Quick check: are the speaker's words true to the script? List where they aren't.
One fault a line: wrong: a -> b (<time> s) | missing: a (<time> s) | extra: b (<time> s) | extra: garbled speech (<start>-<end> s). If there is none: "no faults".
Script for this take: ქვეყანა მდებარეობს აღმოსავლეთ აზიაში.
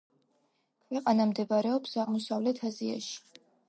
no faults